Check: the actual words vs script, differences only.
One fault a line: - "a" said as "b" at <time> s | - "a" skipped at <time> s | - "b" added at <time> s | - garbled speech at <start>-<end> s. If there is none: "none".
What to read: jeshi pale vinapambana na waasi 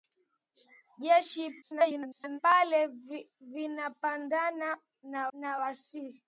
- garbled speech at 1.6-2.4 s
- "na" added at 5.3 s